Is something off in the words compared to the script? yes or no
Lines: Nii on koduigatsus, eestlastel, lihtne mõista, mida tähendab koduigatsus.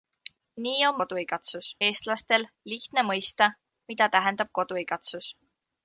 no